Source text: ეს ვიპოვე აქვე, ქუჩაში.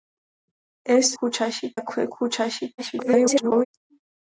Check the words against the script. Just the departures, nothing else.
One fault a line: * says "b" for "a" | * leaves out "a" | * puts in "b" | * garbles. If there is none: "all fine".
* says "ქუჩაში" for "ვიპოვე"
* garbles